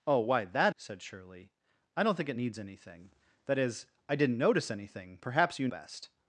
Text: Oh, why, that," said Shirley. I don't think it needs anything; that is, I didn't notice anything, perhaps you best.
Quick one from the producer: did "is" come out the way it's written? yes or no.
yes